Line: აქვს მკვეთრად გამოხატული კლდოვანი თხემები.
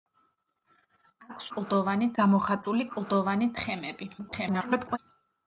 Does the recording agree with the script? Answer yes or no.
no